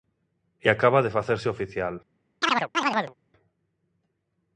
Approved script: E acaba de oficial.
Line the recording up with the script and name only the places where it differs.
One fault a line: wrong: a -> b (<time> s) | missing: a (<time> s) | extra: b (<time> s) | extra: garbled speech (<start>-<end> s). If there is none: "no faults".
extra: facerse (1.2 s)